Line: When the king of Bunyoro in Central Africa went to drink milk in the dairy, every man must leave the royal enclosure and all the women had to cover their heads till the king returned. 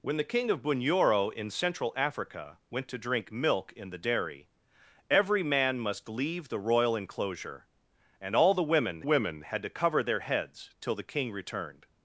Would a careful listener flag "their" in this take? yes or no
no